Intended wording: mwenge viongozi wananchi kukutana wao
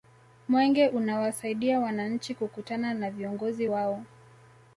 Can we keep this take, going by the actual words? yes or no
no